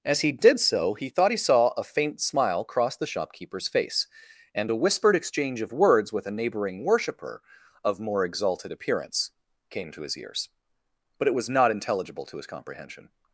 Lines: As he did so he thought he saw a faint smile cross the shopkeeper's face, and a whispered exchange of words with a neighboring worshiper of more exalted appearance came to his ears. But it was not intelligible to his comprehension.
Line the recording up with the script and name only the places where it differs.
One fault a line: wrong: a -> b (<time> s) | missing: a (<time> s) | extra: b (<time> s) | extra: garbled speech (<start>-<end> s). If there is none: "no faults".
no faults